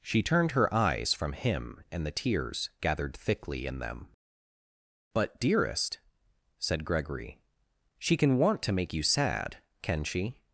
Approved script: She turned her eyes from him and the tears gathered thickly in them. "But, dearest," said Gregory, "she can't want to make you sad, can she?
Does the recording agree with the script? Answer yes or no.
no